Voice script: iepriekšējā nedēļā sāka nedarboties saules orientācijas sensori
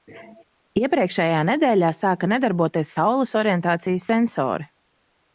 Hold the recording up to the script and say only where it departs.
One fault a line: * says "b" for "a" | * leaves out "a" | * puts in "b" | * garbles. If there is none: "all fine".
all fine